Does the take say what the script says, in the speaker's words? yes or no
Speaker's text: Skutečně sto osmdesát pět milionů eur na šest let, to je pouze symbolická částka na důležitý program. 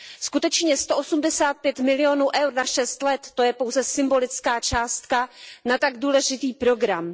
no